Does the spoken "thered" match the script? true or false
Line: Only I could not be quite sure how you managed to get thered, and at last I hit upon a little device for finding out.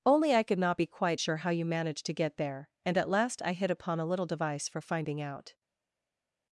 false